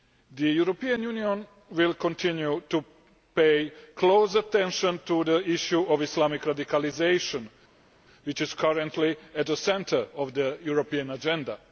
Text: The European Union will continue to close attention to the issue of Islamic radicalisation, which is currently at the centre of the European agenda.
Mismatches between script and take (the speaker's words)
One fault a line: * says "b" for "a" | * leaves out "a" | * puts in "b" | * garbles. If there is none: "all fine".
* puts in "pay"